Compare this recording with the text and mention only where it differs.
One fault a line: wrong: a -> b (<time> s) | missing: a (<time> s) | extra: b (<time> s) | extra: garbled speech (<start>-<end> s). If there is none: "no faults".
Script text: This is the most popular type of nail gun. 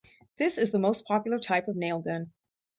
no faults